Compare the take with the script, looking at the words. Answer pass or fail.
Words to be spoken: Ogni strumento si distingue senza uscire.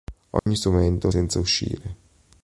fail